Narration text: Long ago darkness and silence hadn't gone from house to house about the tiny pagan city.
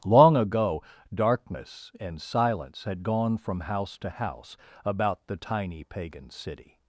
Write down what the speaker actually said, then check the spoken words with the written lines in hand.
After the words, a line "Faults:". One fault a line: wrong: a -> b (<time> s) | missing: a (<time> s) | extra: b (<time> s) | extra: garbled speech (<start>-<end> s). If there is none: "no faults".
Long ago darkness and silence had gone from house to house about the tiny pagan city.
Faults:
wrong: hadn't -> had (2.9 s)